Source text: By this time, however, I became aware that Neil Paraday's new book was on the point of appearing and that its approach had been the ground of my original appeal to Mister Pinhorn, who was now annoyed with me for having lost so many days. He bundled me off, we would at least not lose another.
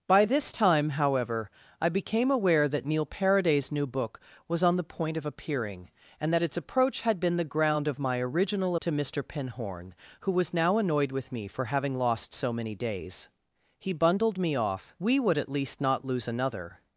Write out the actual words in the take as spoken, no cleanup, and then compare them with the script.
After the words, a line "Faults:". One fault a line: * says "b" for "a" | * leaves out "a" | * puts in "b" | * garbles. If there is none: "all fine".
By this time, however, I became aware that Neil Paraday's new book was on the point of appearing and that its approach had been the ground of my original to Mister Pinhorn, who was now annoyed with me for having lost so many days. He bundled me off, we would at least not lose another.
Faults:
* leaves out "appeal"